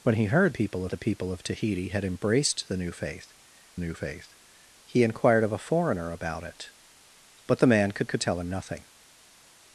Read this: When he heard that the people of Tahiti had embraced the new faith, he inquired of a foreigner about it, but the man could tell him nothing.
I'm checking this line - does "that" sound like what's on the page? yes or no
no